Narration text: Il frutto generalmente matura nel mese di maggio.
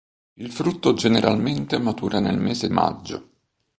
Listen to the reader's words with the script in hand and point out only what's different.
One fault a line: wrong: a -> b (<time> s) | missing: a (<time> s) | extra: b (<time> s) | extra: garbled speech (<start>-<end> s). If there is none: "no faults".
missing: di (2.7 s)